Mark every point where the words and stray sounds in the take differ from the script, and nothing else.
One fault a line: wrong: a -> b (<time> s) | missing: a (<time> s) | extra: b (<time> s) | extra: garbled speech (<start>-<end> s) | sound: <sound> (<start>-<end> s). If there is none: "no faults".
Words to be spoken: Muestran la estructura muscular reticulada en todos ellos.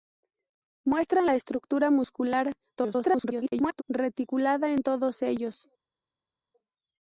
extra: garbled speech (2.8-3.8 s)